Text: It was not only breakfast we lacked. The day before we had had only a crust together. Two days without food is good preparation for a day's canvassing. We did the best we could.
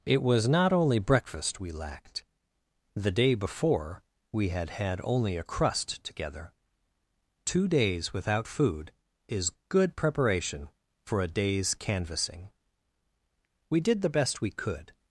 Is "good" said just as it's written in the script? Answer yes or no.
yes